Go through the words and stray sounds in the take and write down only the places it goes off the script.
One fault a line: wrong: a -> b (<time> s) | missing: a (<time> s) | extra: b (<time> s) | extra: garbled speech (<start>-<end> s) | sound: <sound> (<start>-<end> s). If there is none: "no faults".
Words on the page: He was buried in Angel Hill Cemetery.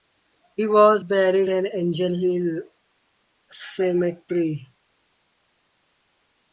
no faults